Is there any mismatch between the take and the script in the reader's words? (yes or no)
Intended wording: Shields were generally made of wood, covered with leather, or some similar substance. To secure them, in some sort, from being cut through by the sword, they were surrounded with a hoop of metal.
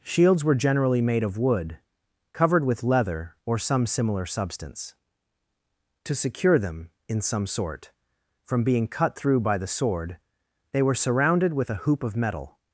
no